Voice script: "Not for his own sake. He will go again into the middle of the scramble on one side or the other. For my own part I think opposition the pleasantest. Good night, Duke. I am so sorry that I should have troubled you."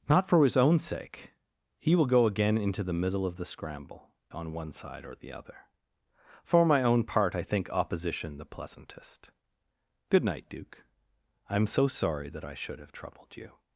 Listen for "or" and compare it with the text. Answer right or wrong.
right